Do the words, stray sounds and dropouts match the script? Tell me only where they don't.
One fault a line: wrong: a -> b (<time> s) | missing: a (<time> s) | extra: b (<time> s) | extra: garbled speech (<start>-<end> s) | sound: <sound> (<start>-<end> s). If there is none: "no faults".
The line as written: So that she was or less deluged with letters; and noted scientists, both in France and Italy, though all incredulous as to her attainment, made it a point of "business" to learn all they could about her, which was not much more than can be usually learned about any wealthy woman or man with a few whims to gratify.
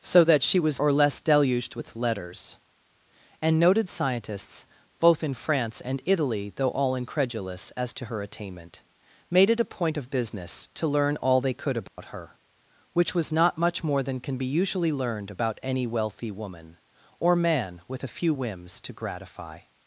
sound: dropout (11.9-12.0 s)